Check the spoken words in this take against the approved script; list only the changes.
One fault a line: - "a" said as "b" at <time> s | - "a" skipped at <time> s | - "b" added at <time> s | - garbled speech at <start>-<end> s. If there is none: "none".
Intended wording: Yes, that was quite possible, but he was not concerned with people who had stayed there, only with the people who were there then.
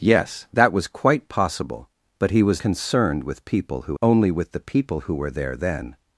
- "not" skipped at 2.6 s
- "had stayed there" skipped at 4.0 s